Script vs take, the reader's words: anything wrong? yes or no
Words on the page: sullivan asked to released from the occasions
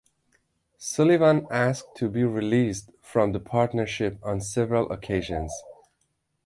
yes